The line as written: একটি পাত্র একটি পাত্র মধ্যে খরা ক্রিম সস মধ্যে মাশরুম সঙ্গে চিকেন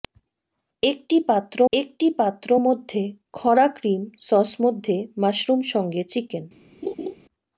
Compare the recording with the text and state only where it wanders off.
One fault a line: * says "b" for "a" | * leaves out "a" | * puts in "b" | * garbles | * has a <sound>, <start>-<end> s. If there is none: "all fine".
* has a laugh, 6.8-7.2 s